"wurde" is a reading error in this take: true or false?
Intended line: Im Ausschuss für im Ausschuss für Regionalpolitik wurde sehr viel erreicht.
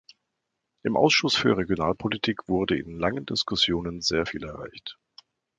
true